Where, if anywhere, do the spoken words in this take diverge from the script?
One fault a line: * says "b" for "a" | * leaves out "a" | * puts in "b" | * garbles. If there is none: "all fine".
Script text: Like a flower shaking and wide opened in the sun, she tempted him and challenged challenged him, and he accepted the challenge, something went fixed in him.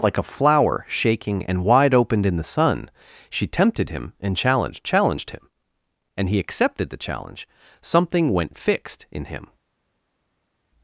all fine